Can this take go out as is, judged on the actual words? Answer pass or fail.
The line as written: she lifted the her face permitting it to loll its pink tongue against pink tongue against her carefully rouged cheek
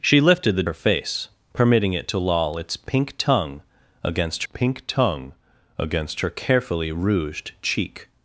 pass